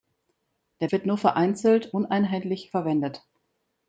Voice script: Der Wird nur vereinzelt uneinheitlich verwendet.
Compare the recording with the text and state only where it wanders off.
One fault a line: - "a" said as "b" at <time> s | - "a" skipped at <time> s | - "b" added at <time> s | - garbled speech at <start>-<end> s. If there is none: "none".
none